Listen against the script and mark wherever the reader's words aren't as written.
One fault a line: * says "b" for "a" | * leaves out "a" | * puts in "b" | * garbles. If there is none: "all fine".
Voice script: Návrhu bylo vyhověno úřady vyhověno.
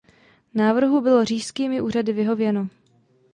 * says "říšskými" for "vyhověno"